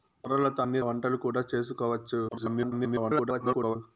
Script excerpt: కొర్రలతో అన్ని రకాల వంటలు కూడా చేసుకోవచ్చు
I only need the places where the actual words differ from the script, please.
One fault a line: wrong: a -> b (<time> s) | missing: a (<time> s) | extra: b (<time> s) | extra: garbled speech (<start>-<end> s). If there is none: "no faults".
missing: రకాల (0.8 s)
extra: garbled speech (2.3-3.8 s)